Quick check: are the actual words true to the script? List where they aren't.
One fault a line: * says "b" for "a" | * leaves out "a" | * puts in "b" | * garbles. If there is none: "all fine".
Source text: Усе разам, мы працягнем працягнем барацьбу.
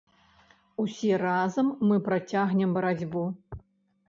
* leaves out "працягнем"